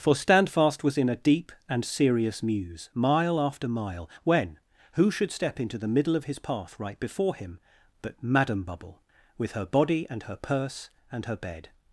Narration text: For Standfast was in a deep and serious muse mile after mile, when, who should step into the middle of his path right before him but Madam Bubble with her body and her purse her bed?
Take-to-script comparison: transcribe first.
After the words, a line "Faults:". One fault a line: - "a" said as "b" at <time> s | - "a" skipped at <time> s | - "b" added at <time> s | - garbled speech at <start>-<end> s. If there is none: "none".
For Standfast was in a deep and serious muse mile after mile, when, who should step into the middle of his path right before him but Madam Bubble with her body and her purse and her bed?
Faults:
- "and" added at 11.1 s